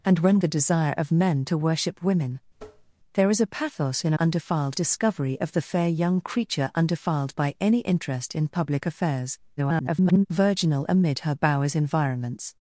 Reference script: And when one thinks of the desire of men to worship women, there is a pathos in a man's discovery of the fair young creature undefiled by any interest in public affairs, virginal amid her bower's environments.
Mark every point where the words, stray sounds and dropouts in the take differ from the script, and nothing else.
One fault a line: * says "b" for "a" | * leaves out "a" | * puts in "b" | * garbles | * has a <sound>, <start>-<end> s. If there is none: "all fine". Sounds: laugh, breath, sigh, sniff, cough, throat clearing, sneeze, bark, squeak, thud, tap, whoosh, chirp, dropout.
* leaves out "one thinks of"
* has a tap, 2.6-2.9 s
* says "undefiled" for "man's"
* garbles